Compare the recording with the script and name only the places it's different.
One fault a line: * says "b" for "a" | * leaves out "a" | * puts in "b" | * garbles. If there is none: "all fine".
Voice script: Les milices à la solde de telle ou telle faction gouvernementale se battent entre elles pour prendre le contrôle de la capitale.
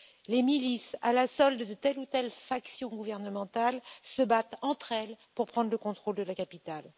all fine